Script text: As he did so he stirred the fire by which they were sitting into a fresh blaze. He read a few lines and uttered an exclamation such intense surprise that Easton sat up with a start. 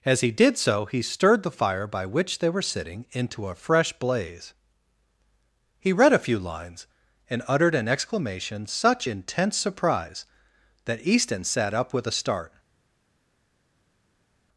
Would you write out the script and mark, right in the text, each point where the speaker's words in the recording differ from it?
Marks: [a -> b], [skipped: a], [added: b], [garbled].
As he did so he stirred the fire by which they were sitting into a fresh blaze. He read a few lines and uttered an exclamation such intense surprise that Easton sat up with a start.